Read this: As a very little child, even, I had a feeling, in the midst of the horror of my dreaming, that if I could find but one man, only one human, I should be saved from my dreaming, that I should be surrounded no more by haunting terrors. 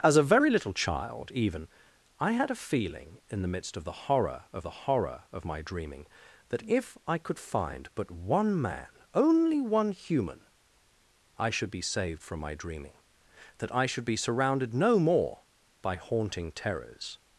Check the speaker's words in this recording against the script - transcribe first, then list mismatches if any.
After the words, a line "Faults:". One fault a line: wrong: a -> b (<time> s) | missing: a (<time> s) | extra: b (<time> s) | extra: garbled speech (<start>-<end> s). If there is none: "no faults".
As a very little child, even, I had a feeling, in the midst of the horror of the horror of my dreaming, that if I could find but one man, only one human, I should be saved from my dreaming, that I should be surrounded no more by haunting terrors.
Faults:
extra: the horror of (4.6 s)